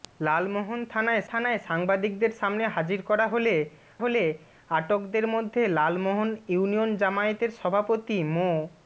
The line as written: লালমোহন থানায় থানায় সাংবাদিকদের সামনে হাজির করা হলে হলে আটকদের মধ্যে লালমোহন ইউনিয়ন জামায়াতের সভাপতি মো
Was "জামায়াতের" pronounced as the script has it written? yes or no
yes